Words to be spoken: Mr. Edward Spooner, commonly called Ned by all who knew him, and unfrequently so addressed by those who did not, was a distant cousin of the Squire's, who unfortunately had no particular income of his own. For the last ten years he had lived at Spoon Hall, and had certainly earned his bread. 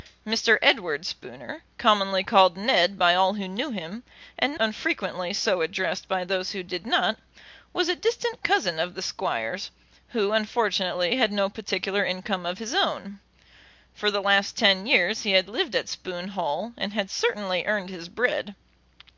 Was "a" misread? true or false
false